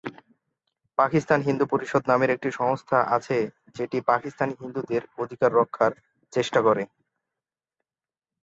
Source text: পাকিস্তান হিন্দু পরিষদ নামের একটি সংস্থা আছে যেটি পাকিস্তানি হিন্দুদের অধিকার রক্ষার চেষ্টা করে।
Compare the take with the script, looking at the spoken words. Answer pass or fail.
pass